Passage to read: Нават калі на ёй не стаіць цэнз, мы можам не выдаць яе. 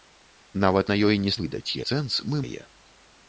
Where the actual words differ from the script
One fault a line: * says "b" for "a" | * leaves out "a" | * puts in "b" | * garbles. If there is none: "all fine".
* leaves out "калі"
* says "выдаць" for "стаіць"
* leaves out "можам не выдаць"